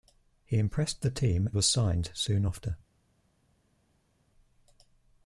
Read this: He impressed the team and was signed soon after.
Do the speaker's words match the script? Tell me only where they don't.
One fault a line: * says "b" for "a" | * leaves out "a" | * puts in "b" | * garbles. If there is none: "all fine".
* leaves out "and"